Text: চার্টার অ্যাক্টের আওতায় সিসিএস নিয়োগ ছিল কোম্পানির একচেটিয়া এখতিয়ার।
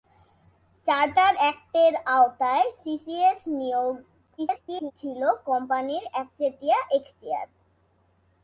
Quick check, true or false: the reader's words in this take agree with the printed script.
false